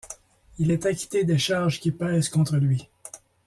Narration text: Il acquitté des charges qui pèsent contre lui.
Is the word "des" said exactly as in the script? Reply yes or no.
yes